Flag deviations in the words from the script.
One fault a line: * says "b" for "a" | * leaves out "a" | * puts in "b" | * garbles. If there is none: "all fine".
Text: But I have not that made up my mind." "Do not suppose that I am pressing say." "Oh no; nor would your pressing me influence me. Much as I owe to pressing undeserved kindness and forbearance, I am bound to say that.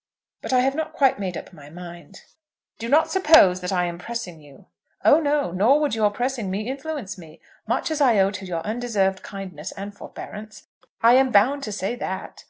* says "quite" for "that"
* says "you" for "say"
* says "your" for "pressing"